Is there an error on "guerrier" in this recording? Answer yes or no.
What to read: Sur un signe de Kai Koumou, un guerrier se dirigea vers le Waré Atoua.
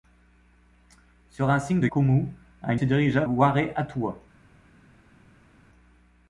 yes